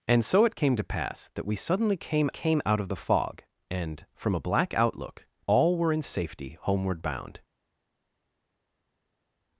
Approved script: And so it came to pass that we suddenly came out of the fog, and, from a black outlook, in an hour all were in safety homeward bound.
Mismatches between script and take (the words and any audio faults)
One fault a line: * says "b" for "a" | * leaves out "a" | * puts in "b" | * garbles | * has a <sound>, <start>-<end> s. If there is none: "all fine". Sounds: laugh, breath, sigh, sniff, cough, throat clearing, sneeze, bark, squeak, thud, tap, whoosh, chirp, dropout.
* puts in "came"
* leaves out "in an hour"